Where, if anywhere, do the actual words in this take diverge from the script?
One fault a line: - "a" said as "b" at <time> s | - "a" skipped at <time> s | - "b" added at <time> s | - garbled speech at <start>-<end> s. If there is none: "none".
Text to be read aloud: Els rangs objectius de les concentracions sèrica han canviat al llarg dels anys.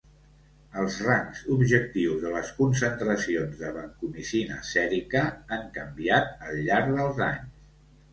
- "de vancomicina" added at 3.6 s